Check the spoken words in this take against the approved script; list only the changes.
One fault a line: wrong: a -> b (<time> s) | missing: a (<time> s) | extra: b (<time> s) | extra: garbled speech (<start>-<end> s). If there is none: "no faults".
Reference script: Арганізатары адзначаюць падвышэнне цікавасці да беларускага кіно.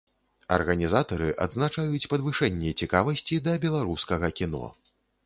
no faults